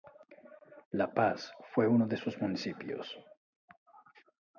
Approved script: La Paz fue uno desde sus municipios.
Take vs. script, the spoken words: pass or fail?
fail